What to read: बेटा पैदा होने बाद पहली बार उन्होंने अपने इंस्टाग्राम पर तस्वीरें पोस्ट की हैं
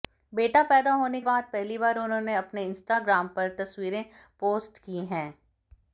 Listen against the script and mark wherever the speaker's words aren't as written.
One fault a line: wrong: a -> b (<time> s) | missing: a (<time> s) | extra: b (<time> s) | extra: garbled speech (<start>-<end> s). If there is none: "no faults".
no faults